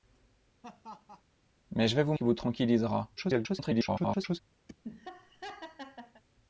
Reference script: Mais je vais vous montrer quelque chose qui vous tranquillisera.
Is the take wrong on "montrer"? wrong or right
wrong